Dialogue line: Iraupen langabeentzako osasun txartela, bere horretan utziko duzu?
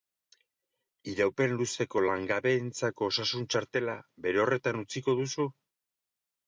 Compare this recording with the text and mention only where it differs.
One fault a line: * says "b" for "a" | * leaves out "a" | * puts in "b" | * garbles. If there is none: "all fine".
* puts in "luzeko"